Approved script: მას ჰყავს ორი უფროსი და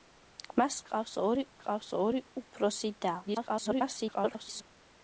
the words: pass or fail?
fail